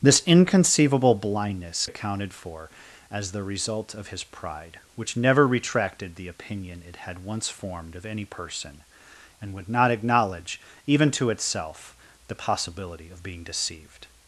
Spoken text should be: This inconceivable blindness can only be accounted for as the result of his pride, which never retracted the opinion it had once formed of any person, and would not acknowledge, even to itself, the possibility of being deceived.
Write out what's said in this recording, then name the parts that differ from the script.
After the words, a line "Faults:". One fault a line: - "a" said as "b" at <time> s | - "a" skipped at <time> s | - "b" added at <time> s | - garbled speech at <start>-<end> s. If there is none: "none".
This inconceivable blindness accounted for as the result of his pride, which never retracted the opinion it had once formed of any person, and would not acknowledge, even to itself, the possibility of being deceived.
Faults:
- "can only be" skipped at 1.9 s